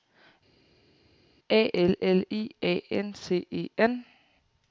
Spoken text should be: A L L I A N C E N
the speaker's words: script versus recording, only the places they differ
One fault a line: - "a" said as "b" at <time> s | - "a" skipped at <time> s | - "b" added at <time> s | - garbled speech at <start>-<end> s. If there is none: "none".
none